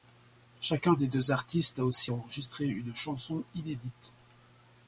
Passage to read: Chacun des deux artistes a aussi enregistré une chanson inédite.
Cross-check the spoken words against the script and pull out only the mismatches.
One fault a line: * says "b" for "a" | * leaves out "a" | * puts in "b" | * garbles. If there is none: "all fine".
all fine